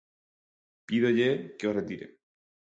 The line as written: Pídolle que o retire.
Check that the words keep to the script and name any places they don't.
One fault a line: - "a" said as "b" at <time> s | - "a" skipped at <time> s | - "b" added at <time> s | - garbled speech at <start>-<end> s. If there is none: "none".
none